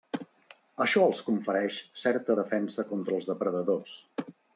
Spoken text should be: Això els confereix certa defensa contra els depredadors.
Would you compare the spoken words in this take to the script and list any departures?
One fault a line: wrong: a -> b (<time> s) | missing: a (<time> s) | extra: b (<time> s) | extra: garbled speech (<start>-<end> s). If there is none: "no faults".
no faults